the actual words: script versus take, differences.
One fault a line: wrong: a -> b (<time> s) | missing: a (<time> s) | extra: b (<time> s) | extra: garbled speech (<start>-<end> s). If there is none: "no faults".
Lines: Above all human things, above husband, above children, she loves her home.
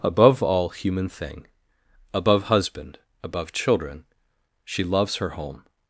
wrong: things -> thing (1.1 s)